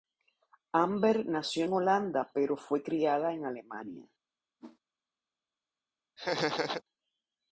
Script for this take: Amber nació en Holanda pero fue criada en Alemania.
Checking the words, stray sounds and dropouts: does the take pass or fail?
fail